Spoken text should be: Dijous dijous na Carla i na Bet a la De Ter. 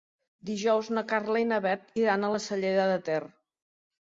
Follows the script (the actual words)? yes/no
no